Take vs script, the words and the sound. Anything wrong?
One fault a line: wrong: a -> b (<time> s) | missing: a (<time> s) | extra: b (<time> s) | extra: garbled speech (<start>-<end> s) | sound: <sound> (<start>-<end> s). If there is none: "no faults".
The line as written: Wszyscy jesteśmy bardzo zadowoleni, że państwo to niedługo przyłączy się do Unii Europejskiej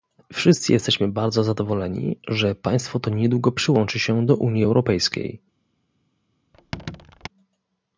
sound: squeak (6.5-7.3 s)